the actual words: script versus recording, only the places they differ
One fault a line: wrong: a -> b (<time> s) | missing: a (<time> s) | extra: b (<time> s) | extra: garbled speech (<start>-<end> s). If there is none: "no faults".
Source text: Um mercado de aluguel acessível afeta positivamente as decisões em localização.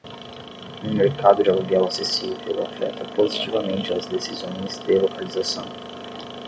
wrong: em -> de (4.9 s)